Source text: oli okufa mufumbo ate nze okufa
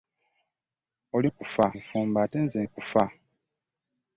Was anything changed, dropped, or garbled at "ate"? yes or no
no